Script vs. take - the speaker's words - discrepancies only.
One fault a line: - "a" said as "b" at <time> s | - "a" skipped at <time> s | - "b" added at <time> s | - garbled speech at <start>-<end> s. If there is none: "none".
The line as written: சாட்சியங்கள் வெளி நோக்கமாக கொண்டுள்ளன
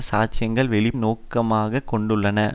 none